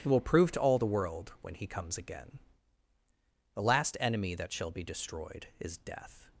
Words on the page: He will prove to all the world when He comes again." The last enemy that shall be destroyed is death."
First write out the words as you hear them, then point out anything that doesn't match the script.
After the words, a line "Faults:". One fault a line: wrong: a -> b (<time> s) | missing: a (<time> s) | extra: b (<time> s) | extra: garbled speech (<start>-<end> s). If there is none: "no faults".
He will prove to all the world when He comes again." The last enemy that shall be destroyed is death."
Faults:
no faults